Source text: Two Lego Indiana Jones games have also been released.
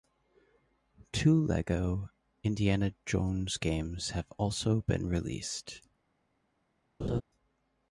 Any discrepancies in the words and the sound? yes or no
yes